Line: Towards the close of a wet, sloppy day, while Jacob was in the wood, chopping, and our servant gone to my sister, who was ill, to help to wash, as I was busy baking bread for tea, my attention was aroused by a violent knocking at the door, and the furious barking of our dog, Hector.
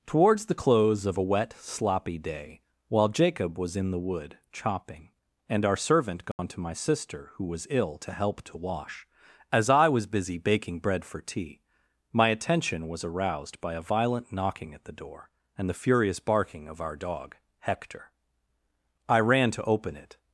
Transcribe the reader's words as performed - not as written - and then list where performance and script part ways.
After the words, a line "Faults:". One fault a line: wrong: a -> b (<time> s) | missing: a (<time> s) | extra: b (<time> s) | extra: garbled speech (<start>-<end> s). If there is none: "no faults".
Towards the close of a wet, sloppy day, while Jacob was in the wood, chopping, and our servant gone to my sister, who was ill, to help to wash, as I was busy baking bread for tea, my attention was aroused by a violent knocking at the door, and the furious barking of our dog, Hector. I ran to open it
Faults:
extra: I ran to open it (19.1 s)